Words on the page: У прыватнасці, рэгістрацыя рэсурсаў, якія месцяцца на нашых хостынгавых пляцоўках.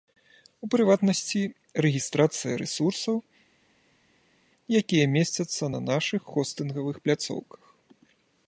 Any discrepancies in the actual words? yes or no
no